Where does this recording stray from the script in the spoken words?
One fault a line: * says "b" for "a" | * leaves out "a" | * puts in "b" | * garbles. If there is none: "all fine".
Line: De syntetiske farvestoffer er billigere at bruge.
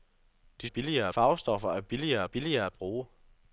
* says "billigere" for "syntetiske"
* puts in "billigere"